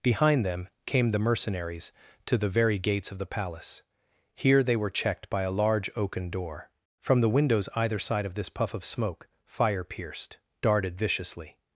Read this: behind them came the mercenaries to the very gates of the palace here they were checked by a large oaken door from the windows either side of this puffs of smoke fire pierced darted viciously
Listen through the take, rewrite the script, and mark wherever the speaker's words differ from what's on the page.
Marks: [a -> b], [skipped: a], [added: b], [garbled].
behind them came the mercenaries to the very gates of the palace here they were checked by a large oaken door from the windows either side of this [puffs -> puff] of smoke fire pierced darted viciously